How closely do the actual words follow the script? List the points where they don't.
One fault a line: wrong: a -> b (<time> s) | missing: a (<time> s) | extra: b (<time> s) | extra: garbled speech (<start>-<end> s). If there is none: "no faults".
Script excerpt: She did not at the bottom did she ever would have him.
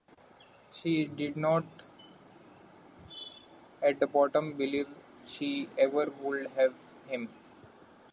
wrong: did -> believe (4.6 s)